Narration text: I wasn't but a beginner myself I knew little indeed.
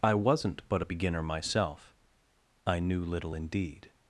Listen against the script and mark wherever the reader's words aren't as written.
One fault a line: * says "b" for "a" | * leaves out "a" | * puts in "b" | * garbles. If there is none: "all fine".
all fine